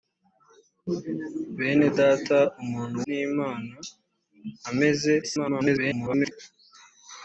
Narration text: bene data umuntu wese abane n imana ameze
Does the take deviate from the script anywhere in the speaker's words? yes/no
yes